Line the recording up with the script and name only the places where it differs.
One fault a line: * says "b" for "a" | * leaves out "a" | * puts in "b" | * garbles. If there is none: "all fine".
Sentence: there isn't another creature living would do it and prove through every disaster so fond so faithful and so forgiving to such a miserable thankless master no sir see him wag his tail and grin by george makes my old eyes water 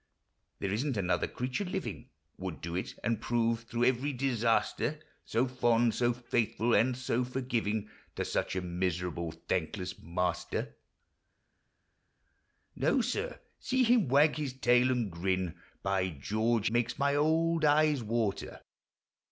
all fine